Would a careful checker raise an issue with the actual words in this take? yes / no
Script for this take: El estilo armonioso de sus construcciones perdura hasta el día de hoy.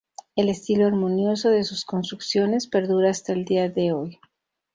no